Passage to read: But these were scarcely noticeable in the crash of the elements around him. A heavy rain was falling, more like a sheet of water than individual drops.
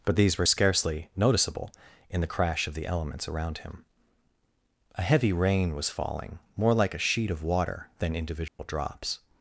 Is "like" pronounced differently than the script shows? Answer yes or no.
no